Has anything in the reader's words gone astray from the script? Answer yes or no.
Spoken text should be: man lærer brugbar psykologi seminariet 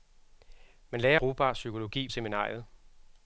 no